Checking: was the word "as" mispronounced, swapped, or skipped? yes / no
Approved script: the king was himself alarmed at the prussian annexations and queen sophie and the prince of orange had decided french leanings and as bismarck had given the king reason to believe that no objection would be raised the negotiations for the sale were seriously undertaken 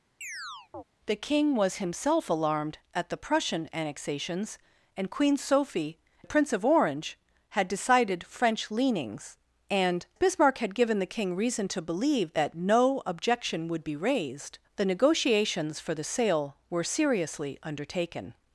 yes